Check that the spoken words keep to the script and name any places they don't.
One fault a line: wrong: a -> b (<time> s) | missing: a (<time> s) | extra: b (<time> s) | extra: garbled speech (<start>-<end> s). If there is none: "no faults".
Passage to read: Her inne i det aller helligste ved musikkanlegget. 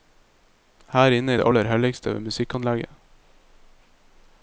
no faults